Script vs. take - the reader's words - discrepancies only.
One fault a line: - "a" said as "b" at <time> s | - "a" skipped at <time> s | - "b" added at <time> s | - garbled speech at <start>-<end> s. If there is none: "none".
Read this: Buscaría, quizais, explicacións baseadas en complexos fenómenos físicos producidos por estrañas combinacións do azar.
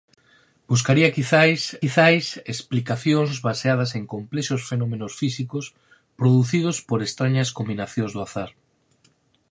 - "quizais" added at 1.8 s